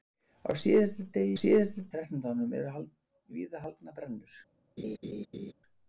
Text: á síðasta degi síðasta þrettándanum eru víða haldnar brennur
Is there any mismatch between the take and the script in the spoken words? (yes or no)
no